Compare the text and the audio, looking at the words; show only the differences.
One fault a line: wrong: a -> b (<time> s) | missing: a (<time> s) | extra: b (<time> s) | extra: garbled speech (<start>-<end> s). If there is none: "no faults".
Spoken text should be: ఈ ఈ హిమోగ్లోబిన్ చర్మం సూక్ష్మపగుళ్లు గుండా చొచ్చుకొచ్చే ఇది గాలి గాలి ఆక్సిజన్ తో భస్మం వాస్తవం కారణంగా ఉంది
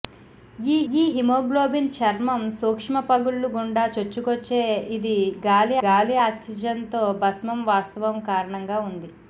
no faults